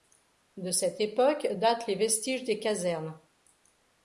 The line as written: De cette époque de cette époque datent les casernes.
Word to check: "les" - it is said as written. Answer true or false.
false